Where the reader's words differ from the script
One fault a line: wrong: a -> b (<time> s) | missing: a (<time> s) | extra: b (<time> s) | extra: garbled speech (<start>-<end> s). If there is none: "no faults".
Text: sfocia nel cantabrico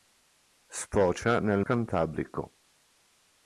no faults